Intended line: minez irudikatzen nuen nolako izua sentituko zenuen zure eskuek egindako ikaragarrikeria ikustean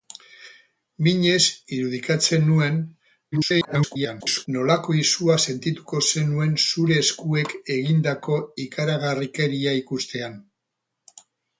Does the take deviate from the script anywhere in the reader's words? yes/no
yes